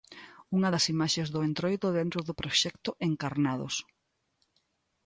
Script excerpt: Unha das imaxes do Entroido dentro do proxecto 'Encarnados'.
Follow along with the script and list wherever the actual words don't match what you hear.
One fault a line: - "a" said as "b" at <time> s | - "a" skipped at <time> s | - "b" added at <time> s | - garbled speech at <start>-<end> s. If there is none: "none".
none